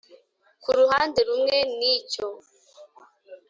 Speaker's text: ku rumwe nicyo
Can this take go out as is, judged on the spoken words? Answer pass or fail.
fail